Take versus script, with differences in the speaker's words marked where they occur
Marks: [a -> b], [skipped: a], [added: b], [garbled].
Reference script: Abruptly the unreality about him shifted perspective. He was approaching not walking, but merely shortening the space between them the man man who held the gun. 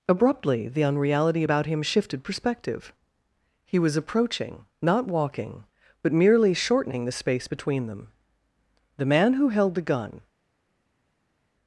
Abruptly the unreality about him shifted perspective. He was approaching not walking, but merely shortening the space between them the man [skipped: man] who held the gun.